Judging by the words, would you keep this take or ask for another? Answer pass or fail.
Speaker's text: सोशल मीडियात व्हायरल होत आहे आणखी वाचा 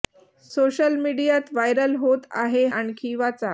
pass